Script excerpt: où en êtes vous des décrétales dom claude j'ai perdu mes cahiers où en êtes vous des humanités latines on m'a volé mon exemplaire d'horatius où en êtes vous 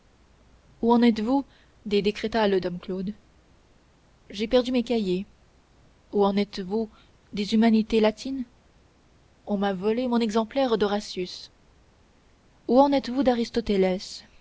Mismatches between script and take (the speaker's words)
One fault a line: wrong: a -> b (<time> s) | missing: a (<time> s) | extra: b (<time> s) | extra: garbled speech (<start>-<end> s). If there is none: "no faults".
no faults